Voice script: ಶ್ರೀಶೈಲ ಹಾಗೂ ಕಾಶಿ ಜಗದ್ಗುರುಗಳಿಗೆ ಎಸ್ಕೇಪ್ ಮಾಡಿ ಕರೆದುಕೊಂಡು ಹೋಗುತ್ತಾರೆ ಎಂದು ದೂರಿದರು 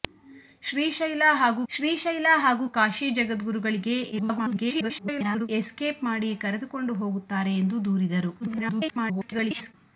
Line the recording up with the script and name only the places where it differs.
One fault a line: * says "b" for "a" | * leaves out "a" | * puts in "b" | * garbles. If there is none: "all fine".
* puts in "ಶ್ರೀಶೈಲ ಹಾಗೂ"
* garbles
* garbles